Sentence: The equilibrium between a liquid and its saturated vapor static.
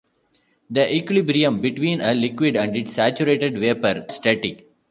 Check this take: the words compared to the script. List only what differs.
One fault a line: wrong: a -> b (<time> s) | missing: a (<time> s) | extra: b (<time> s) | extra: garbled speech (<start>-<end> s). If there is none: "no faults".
no faults